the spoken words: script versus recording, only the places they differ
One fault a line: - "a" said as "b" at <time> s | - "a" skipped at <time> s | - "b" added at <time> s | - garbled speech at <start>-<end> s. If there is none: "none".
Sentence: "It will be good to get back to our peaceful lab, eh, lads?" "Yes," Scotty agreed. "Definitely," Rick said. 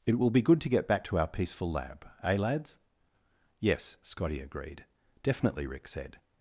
none